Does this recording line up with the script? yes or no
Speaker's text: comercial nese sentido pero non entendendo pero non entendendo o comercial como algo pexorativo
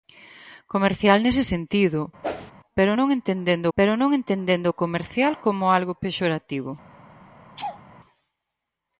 yes